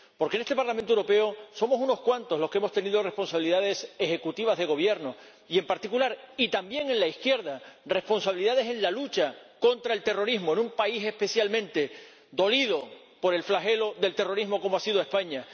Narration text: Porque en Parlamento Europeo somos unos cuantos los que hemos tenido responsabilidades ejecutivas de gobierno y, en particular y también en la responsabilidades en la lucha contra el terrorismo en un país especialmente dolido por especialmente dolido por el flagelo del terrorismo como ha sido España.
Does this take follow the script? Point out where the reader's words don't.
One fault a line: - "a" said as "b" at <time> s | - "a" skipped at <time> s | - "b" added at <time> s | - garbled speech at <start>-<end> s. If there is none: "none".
- "este" added at 0.4 s
- "izquierda" added at 7.1 s
- "especialmente dolido por" skipped at 13.3 s